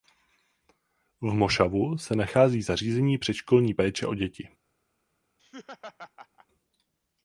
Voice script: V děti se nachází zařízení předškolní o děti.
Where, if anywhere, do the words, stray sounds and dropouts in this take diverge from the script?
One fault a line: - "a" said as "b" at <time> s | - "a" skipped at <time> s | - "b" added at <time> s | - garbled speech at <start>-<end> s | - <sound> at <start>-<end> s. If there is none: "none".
- "děti" said as "mošavu" at 1.3 s
- "péče" added at 3.7 s
- laugh at 5.4-6.5 s